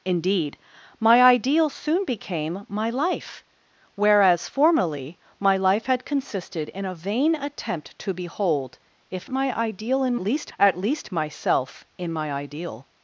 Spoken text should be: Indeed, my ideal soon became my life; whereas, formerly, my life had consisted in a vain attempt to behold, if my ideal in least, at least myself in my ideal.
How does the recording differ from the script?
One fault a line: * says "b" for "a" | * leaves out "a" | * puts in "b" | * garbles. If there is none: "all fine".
all fine